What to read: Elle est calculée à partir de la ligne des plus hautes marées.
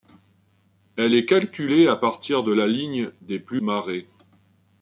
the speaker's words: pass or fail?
fail